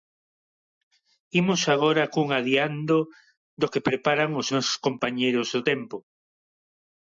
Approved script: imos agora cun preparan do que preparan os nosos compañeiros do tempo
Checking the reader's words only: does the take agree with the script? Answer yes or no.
no